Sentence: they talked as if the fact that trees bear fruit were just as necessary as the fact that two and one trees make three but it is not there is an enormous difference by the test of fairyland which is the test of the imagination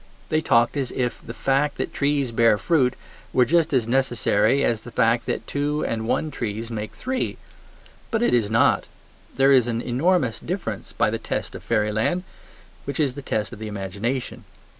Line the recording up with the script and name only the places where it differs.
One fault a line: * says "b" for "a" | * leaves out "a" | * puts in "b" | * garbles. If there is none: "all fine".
all fine